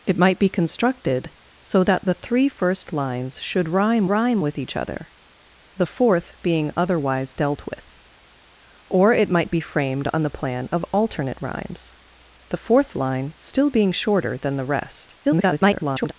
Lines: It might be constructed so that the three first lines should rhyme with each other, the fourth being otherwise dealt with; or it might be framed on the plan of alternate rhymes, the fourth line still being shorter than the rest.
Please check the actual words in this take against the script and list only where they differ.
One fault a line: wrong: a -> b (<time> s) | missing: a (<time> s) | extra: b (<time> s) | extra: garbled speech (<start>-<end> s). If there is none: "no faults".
extra: rhyme (4.1 s)
extra: garbled speech (15.2-16.1 s)